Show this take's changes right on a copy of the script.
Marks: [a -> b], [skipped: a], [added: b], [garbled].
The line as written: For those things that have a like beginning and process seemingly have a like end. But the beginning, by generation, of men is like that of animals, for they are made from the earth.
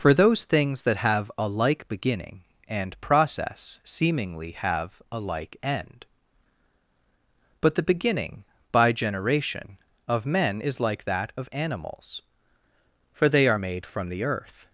For those things that have a like beginning and process seemingly have a like end. But the beginning, by generation, of men is like that of animals, for they are made from the earth.